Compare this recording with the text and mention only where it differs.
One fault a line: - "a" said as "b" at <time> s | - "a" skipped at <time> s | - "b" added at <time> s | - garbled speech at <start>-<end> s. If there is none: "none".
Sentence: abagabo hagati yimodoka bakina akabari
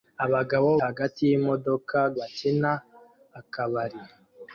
none